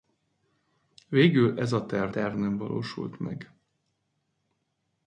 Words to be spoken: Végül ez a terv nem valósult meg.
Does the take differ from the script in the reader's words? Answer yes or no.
yes